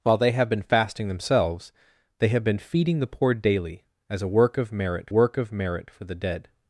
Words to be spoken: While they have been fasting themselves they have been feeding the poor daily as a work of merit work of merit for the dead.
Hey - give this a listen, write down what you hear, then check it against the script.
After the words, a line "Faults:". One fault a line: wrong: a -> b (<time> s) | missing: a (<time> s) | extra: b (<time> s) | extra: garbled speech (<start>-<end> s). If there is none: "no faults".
While they have been fasting themselves they have been feeding the poor daily as a work of merit work of merit for the dead.
Faults:
no faults